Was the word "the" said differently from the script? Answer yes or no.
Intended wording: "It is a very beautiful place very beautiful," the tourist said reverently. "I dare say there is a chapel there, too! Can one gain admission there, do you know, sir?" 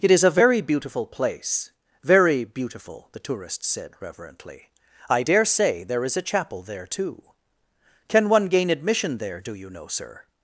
no